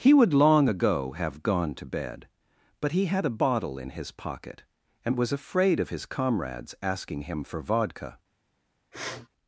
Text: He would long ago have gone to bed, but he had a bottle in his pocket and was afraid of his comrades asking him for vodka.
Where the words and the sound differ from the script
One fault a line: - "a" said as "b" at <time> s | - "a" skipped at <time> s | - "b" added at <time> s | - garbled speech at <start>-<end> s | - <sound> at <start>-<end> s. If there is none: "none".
- sniff at 8.9-9.3 s